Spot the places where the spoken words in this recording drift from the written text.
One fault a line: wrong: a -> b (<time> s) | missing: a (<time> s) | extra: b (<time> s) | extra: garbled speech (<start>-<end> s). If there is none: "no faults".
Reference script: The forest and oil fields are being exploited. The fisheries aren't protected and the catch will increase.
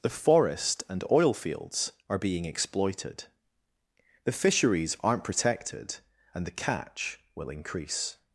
no faults